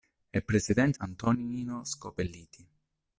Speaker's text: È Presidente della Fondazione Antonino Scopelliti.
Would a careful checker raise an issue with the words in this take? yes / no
yes